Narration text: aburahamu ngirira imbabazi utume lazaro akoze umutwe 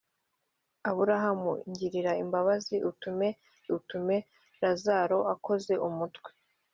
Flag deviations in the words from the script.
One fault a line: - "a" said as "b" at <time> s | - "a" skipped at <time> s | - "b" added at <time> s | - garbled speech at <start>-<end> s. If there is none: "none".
- "utume" added at 3.8 s